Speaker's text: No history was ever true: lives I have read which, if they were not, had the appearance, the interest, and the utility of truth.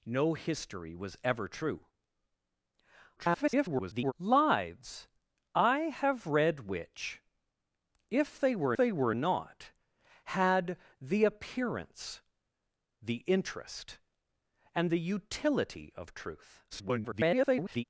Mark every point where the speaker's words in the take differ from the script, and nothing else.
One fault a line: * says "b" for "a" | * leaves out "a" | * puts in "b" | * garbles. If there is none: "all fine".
* garbles
* puts in "they were"
* garbles